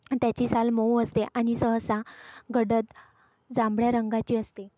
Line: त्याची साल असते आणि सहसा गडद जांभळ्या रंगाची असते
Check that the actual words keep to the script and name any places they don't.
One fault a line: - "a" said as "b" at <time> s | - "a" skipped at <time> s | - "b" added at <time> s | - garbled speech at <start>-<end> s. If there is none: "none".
- "मऊ" added at 0.7 s